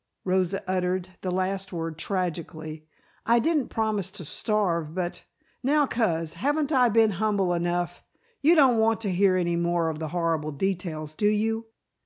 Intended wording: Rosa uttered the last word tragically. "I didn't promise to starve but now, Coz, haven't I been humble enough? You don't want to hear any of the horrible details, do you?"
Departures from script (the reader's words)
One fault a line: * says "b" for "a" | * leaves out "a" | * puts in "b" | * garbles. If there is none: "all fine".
* puts in "more"